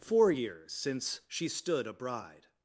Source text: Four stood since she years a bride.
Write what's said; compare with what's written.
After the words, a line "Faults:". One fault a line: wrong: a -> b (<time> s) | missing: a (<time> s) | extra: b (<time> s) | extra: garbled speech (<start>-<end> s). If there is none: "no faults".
Four years since she stood a bride.
Faults:
wrong: stood -> years (0.3 s)
wrong: years -> stood (1.5 s)